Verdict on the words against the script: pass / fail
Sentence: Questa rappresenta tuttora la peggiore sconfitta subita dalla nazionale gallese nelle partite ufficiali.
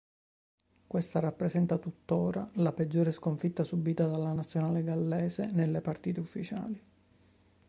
pass